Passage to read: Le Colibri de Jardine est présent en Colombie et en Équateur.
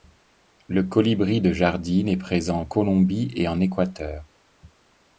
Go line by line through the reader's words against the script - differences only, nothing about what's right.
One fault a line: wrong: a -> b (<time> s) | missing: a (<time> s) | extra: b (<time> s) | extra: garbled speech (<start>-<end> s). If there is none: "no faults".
no faults